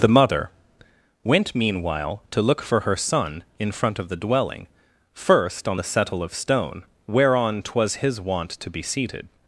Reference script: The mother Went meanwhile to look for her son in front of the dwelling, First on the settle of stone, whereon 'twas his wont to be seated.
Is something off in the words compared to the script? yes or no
no